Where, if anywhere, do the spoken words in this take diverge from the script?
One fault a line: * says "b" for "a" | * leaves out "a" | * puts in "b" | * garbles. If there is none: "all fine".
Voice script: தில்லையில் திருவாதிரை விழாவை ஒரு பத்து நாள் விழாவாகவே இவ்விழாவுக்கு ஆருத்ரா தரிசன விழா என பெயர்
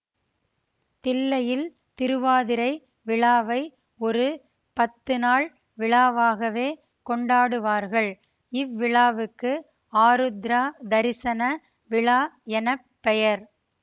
* puts in "கொண்டாடுவார்கள்"